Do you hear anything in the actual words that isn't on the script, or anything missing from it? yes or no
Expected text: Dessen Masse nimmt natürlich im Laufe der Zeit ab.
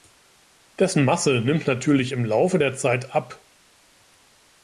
no